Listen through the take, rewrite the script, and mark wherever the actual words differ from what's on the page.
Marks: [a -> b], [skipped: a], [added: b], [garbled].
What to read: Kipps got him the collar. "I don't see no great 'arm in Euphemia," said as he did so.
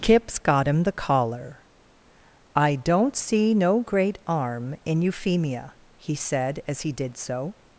Kipps got him the collar. "I don't see no great 'arm in Euphemia," [added: he] said as he did so.